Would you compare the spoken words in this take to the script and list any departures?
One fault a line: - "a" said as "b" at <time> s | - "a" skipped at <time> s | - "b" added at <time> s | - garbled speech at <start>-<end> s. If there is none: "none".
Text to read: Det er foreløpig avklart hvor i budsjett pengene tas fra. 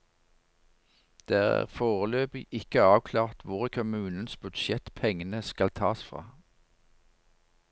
- "ikke" added at 2.5 s
- "kommunens" added at 3.7 s
- "skal" added at 5.4 s